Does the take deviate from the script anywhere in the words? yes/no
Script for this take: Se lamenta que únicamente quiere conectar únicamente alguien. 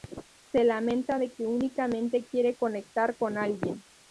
yes